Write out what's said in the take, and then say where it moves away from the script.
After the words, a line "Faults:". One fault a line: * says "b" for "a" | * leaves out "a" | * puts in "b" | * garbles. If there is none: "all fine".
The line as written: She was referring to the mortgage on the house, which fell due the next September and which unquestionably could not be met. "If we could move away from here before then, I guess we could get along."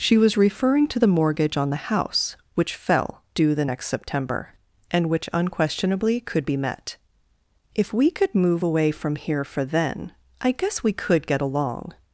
She was referring to the mortgage on the house, which fell due the next September and which unquestionably could be met. "If we could move away from here for then, I guess we could get along."
Faults:
* leaves out "not"
* says "for" for "before"